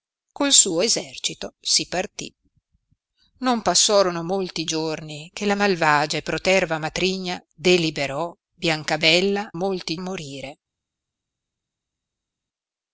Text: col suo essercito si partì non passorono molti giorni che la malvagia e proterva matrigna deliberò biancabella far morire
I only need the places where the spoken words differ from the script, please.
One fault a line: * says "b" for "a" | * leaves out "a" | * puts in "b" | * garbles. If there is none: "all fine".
* says "molti" for "far"